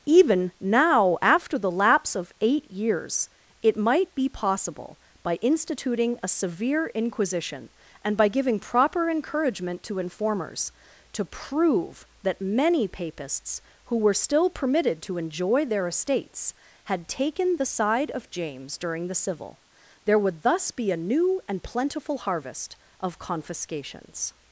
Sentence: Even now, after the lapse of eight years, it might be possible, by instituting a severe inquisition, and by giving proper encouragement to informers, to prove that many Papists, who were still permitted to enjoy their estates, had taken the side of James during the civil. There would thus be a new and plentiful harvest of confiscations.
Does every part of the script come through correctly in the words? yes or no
yes